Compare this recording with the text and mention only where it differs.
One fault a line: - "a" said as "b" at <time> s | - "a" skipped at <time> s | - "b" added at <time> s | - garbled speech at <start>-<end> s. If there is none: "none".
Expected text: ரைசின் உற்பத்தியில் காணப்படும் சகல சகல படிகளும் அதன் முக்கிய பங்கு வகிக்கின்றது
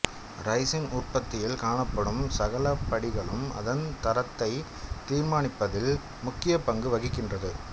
- "சகல" skipped at 2.6 s
- "தரத்தை தீர்மானிப்பதில்" added at 4.0 s